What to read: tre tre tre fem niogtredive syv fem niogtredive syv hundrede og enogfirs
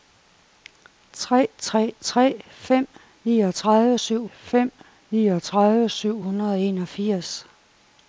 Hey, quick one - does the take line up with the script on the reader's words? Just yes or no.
yes